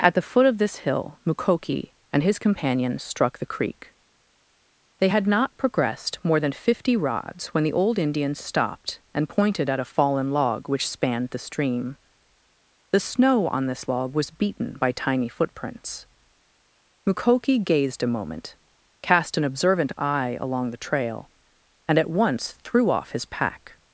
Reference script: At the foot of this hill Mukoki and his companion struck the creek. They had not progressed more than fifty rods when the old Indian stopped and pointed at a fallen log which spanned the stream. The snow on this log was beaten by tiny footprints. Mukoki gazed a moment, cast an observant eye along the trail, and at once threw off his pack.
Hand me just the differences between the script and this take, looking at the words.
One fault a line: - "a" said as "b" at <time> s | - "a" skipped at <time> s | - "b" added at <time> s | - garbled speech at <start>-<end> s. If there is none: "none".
none